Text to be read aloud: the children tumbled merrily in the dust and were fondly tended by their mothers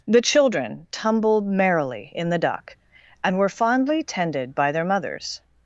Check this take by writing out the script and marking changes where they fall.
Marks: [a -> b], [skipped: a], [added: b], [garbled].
the children tumbled merrily in the [dust -> duck] and were fondly tended by their mothers